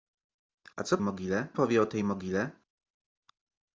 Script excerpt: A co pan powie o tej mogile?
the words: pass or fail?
fail